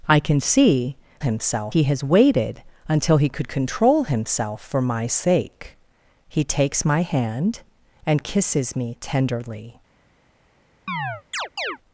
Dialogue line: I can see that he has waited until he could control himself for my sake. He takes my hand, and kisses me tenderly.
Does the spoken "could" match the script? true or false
true